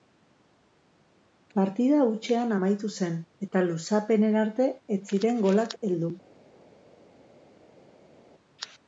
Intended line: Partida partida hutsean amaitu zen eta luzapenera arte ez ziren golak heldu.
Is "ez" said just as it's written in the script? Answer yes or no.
yes